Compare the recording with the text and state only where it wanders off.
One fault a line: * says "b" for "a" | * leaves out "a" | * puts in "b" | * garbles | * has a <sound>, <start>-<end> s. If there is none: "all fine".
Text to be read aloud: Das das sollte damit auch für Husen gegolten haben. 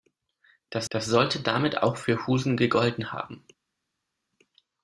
all fine